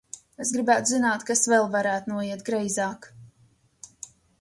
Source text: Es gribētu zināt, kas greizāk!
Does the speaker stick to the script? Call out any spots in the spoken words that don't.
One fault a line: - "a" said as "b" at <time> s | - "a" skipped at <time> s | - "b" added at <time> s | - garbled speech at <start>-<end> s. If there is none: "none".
- "vēl varētu noiet" added at 1.5 s